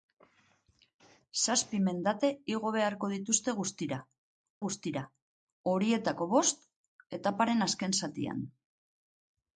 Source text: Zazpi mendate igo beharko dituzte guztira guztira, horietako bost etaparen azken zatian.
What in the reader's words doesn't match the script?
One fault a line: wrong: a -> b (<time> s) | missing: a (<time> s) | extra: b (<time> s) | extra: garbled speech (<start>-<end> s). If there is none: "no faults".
no faults